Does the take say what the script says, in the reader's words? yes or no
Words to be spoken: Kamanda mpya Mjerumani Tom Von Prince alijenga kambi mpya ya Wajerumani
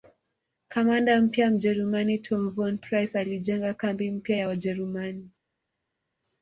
yes